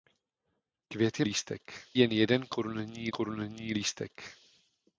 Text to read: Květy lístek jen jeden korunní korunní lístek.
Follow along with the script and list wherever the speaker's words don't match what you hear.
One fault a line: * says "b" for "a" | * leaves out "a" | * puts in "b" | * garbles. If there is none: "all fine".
all fine